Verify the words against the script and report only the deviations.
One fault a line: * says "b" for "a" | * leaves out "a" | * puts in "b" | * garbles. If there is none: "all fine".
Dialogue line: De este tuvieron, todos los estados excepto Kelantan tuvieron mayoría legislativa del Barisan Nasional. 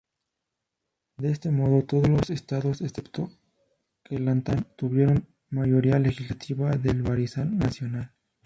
* says "modo" for "tuvieron"